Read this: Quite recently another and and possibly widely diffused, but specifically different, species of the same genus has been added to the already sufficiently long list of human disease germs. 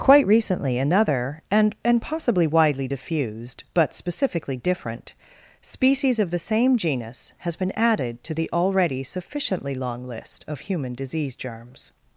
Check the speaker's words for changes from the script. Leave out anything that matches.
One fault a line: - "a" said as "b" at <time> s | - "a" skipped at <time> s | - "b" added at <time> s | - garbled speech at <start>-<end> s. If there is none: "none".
none